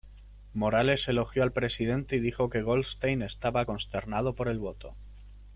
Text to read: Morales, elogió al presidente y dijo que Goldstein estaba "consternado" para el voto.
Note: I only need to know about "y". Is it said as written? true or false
true